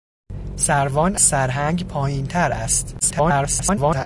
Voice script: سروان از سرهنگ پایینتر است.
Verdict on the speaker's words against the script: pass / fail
fail